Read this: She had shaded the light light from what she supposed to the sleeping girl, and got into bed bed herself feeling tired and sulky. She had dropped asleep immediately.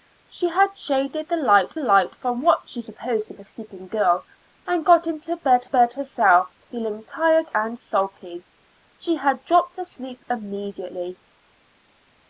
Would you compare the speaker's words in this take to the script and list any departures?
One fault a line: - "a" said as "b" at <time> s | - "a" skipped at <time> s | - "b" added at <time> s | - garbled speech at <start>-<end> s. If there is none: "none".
none